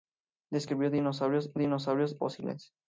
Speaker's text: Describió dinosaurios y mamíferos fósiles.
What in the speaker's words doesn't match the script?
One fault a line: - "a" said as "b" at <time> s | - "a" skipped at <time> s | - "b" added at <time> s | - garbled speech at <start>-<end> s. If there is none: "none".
- "mamíferos" said as "dinosaurios" at 1.6 s